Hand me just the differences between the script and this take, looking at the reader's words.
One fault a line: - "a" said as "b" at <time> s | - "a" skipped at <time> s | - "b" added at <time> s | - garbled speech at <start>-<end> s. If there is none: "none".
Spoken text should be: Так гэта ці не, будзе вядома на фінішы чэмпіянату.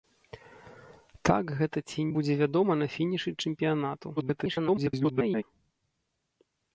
- "не" skipped at 2.0 s
- garbled speech at 4.2-5.4 s